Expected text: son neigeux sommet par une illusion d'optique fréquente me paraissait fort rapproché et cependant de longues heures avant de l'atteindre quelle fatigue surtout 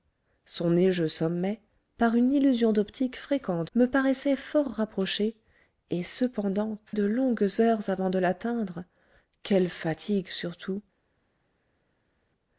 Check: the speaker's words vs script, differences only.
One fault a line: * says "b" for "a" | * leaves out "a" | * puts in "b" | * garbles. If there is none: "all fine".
all fine